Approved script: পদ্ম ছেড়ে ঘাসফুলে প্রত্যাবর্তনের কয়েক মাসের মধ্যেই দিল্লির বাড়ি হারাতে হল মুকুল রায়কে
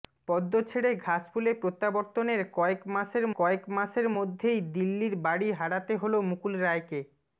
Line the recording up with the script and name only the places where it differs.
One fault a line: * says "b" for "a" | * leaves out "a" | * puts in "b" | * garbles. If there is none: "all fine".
* puts in "কয়েক মাসের"